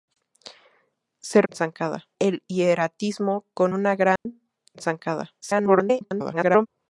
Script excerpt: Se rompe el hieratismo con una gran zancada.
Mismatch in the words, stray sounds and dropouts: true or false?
true